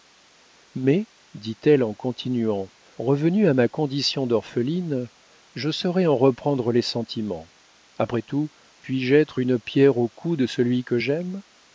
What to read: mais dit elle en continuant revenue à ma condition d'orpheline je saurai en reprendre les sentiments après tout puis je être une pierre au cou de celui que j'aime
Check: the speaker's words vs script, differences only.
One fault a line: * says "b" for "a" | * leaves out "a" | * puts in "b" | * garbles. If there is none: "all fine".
all fine